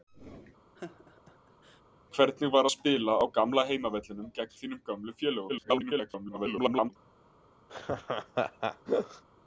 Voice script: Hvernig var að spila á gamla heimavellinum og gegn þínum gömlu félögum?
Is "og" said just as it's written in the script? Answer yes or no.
no